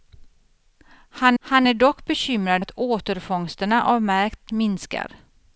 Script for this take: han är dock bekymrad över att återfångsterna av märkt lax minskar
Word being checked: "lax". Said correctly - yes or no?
no